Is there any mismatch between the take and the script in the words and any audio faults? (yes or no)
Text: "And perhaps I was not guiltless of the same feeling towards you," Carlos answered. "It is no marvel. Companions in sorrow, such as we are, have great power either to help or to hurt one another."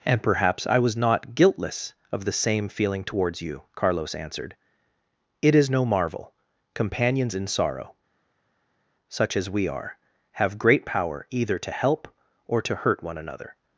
no